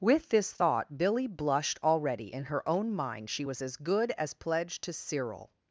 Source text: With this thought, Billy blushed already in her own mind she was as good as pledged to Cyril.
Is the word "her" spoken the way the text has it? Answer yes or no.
yes